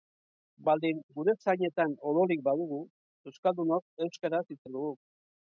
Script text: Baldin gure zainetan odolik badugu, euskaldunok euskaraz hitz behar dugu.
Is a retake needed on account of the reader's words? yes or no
no